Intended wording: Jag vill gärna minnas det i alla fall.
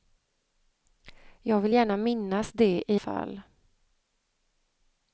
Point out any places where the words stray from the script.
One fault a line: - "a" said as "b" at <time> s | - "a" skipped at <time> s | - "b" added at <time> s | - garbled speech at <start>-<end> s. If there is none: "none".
- "alla" skipped at 3.0 s